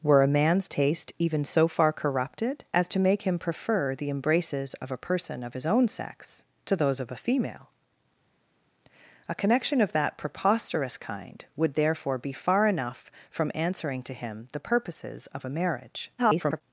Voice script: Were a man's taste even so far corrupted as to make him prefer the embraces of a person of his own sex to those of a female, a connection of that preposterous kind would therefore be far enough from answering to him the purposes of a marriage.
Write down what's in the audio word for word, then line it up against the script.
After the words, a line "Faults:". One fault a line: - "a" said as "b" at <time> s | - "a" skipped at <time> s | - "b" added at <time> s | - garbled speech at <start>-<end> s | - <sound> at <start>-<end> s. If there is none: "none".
Were a man's taste even so far corrupted as to make him prefer the embraces of a person of his own sex to those of a female, a connection of that preposterous kind would therefore be far enough from answering to him the purposes of a marriage. [garbled]
Faults:
- garbled speech at 16.2-16.6 s